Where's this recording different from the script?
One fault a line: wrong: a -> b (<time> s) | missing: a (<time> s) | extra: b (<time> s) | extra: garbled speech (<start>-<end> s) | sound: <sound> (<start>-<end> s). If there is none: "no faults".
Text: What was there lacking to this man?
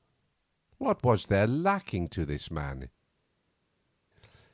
no faults